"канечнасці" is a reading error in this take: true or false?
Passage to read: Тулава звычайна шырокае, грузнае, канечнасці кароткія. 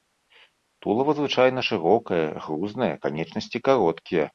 false